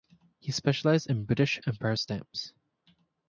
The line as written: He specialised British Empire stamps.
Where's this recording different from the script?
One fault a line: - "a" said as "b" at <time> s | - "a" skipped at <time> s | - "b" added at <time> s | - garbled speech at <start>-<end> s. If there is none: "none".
- "in" added at 1.1 s